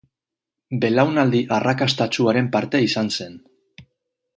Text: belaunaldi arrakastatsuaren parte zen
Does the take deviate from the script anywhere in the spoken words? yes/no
yes